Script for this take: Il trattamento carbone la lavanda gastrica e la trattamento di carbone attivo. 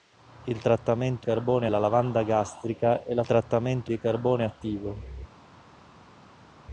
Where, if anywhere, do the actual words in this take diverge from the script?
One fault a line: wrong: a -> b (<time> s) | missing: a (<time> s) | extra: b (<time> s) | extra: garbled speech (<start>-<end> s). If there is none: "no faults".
no faults